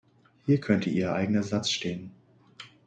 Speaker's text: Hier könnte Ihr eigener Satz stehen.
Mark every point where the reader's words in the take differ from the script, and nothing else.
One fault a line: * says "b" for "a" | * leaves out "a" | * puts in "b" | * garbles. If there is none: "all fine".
all fine